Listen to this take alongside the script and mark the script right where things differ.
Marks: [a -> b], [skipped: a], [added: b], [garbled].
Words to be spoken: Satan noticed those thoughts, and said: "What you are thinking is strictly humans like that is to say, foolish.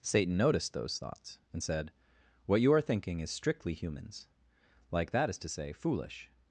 Satan noticed those thoughts, and said: "What you are thinking is strictly humans like that is to say, foolish.